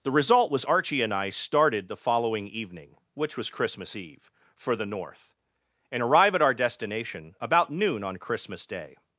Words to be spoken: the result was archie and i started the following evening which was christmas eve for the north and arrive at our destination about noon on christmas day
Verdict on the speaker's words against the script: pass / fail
pass